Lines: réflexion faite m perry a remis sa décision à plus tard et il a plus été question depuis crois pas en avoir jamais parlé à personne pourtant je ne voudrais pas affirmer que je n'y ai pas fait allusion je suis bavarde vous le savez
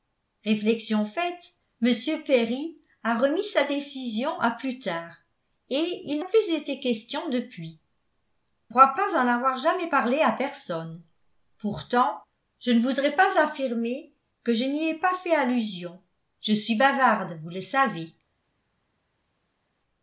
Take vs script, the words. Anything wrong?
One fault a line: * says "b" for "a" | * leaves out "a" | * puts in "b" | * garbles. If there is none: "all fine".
all fine